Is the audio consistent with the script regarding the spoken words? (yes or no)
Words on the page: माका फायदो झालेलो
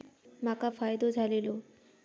yes